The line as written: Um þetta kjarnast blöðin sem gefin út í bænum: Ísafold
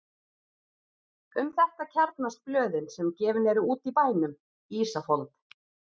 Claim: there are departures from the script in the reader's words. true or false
true